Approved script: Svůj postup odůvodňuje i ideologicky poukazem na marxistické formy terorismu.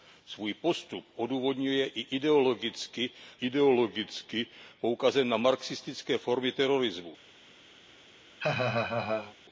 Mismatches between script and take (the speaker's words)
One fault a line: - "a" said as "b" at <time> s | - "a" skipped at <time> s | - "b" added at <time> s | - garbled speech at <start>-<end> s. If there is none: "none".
- "ideologicky" added at 3.5 s